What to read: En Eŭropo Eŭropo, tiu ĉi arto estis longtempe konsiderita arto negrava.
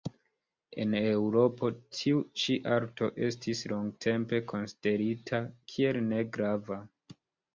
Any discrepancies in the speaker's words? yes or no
yes